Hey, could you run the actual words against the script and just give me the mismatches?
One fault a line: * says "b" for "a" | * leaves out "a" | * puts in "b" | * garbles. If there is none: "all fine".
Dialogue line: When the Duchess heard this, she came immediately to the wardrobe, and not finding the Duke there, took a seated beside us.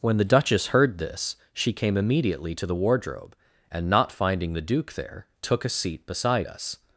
* says "seat" for "seated"